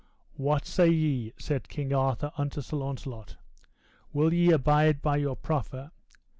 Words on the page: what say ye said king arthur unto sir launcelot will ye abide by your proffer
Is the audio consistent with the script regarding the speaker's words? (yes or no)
yes